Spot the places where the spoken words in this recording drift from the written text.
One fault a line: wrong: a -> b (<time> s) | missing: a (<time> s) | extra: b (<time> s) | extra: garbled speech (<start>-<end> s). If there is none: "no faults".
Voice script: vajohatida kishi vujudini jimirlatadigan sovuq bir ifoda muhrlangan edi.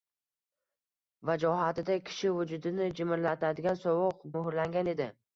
missing: bir ifoda (4.2 s)